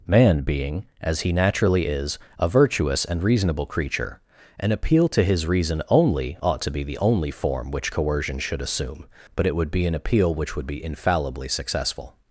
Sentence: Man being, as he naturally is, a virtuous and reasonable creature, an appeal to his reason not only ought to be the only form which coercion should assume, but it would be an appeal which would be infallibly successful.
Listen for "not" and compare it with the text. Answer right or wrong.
wrong